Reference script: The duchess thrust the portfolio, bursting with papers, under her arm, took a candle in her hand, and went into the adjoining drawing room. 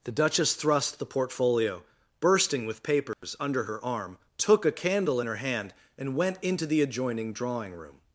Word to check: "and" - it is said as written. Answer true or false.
true